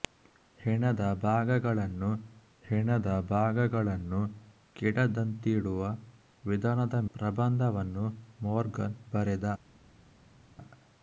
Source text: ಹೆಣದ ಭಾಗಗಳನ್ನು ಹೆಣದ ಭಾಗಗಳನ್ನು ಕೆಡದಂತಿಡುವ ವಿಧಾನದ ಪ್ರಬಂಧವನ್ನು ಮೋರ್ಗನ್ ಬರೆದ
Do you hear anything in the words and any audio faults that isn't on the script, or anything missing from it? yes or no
no